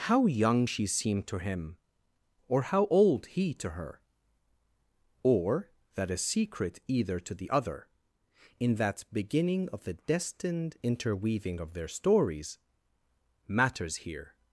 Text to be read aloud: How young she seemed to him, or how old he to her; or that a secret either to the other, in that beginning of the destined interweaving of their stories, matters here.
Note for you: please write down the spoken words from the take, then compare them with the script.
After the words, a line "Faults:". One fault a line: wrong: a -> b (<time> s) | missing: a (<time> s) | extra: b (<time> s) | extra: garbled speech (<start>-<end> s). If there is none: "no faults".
How young she seemed to him, or how old he to her; or that a secret either to the other, in that beginning of the destined interweaving of their stories, matters here.
Faults:
no faults